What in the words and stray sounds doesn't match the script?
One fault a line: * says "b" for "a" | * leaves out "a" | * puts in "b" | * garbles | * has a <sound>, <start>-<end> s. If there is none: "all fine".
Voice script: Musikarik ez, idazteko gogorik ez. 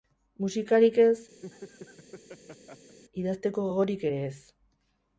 * has a laugh, 1.4-3.0 s
* puts in "ere"